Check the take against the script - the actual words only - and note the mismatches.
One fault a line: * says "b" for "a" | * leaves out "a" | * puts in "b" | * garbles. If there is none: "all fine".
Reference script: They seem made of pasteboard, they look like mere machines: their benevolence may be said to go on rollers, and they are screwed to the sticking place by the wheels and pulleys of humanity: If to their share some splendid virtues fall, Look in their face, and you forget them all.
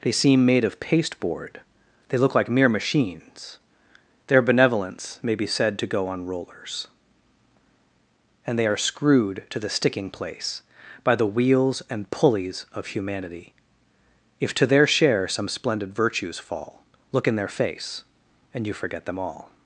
all fine